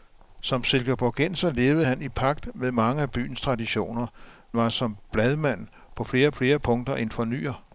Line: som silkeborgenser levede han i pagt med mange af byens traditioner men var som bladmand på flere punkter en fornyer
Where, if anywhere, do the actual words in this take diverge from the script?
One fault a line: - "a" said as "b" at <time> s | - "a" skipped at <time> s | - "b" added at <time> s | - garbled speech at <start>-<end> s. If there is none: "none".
- "men" skipped at 4.1 s
- "flere" added at 6.3 s